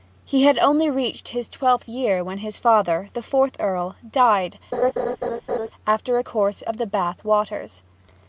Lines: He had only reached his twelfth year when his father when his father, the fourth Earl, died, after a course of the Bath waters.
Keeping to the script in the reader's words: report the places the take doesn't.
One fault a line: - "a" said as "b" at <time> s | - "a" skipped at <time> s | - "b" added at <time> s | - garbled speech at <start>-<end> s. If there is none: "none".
- "when his father" skipped at 3.1 s